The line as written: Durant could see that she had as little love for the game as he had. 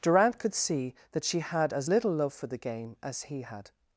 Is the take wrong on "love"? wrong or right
right